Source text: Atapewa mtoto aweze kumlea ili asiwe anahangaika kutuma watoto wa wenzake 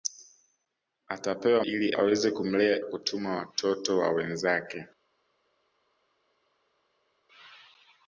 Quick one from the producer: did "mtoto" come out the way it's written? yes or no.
no